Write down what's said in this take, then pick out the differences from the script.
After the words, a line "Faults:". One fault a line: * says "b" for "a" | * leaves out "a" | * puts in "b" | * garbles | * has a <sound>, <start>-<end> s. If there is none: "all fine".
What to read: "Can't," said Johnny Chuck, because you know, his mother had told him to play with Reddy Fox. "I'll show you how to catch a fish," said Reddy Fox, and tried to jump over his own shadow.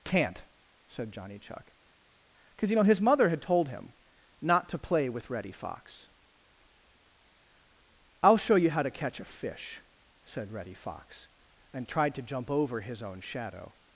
"Can't," said Johnny Chuck, because you know, his mother had told him not to play with Reddy Fox. "I'll show you how to catch a fish," said Reddy Fox, and tried to jump over his own shadow.
Faults:
* puts in "not"